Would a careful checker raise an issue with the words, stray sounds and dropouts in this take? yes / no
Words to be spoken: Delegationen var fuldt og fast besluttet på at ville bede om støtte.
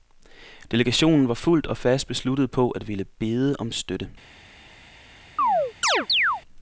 yes